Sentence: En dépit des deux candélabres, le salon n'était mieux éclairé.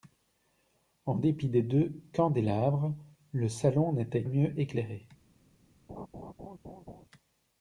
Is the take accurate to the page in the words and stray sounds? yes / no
no